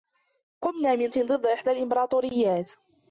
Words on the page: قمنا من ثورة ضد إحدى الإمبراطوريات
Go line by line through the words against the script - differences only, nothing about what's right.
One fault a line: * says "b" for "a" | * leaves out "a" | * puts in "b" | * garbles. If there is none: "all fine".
* leaves out "ثورة"